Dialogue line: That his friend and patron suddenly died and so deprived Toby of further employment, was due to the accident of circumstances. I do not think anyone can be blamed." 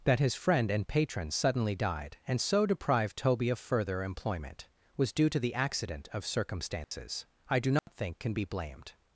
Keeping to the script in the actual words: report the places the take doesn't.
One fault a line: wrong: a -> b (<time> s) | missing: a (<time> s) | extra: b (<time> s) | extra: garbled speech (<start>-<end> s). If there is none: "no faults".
missing: anyone (8.2 s)